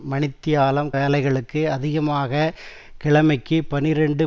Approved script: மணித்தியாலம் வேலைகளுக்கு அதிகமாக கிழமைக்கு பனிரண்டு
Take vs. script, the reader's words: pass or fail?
pass